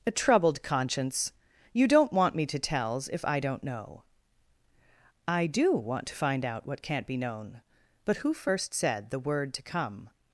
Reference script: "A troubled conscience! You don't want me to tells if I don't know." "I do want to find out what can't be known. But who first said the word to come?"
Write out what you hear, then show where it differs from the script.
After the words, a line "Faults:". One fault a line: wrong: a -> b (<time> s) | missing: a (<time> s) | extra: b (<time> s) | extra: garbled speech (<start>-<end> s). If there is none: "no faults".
"A troubled conscience! You don't want me to tells if I don't know." "I do want to find out what can't be known. But who first said the word to come?"
Faults:
no faults